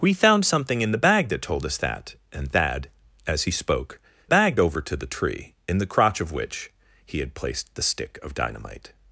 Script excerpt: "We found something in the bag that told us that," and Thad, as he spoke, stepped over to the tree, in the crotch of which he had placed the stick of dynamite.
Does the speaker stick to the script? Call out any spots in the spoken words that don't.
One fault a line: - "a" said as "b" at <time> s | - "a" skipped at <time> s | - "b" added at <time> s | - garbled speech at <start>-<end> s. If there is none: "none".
- "stepped" said as "bag" at 4.3 s